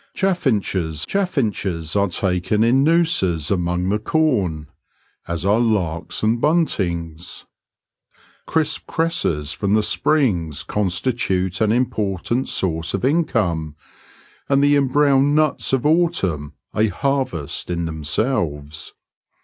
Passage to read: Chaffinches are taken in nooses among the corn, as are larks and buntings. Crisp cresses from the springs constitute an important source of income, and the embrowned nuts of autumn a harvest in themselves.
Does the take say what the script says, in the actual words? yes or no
no